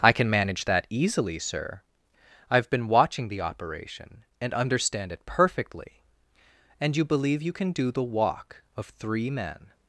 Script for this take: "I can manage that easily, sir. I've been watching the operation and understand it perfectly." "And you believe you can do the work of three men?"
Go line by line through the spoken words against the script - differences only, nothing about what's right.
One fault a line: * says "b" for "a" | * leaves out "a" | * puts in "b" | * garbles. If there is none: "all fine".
* says "walk" for "work"